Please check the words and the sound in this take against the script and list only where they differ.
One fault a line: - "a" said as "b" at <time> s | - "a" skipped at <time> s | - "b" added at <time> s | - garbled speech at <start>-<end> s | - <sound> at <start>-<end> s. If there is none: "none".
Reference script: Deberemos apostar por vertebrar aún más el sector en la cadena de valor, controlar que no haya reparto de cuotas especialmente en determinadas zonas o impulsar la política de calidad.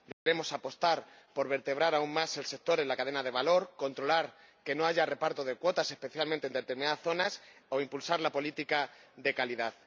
- dropout at 0.1-0.3 s